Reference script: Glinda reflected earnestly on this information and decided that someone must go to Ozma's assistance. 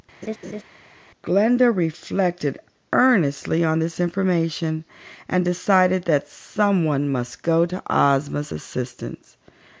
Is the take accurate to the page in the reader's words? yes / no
yes